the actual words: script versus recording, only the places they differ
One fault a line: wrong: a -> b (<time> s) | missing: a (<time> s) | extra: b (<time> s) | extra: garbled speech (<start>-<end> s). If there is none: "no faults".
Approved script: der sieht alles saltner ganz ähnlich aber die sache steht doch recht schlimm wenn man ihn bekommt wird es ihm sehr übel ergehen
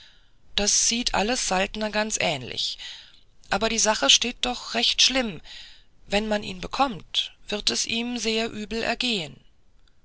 wrong: der -> das (0.6 s)